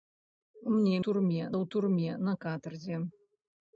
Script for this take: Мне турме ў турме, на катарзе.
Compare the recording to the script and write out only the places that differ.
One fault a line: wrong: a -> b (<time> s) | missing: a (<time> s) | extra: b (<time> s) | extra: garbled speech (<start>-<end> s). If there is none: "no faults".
no faults